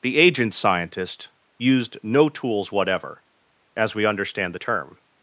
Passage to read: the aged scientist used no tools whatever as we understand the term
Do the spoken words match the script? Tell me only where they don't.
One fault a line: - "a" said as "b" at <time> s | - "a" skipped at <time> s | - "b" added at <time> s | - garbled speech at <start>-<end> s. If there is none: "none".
- "aged" said as "agent" at 0.2 s